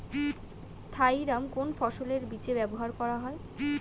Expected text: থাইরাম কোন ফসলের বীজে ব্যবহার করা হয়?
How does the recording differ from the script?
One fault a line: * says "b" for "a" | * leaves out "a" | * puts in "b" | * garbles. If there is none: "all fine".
all fine